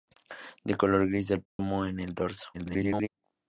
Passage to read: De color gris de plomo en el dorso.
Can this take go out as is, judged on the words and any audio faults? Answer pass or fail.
fail